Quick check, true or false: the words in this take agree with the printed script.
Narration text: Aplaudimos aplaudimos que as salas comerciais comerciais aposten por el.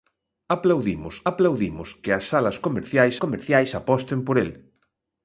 true